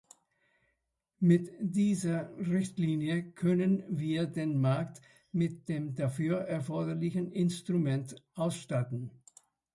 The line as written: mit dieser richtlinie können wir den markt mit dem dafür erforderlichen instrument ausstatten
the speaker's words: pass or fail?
pass